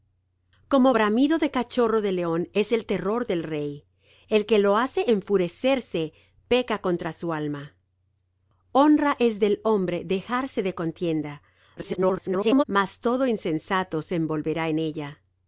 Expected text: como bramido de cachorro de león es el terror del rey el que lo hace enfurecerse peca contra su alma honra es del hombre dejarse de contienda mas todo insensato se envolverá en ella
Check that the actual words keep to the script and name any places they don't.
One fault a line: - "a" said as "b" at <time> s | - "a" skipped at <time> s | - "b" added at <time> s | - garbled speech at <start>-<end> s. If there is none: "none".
- garbled speech at 11.8-12.6 s